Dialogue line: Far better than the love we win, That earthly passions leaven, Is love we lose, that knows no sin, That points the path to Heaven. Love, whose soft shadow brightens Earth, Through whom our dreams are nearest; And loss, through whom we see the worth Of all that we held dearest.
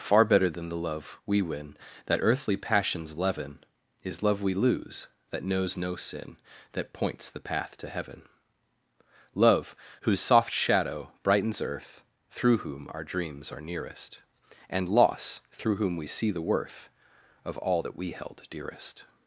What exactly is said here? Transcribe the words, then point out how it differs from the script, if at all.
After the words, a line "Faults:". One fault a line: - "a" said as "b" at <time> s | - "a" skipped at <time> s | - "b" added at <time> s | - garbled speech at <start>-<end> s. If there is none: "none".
Far better than the love we win, That earthly passions leaven, Is love we lose, that knows no sin, That points the path to Heaven. Love, whose soft shadow brightens Earth, Through whom our dreams are nearest; And loss, through whom we see the worth Of all that we held dearest.
Faults:
none